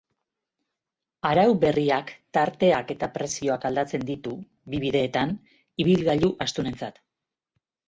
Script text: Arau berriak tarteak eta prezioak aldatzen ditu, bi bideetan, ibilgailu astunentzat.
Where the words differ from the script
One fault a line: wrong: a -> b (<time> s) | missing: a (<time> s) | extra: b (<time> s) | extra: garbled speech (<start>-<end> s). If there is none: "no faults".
no faults